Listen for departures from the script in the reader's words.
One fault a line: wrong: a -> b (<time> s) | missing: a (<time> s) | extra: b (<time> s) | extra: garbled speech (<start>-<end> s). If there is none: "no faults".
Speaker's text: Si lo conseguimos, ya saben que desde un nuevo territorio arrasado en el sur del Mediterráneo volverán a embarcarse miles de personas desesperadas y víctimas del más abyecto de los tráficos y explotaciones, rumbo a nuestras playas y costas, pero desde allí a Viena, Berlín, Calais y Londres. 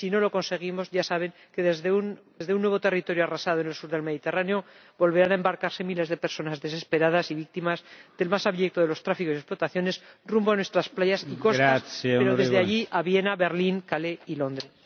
extra: no (0.1 s)